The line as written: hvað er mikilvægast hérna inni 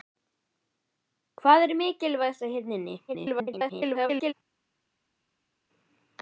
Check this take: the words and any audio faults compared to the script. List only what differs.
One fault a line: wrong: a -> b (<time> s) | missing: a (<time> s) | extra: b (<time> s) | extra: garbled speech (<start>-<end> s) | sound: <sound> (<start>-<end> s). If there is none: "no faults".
extra: garbled speech (3.1-4.3 s)